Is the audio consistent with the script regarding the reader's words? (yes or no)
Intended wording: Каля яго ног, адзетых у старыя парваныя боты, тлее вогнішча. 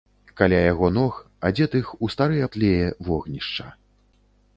no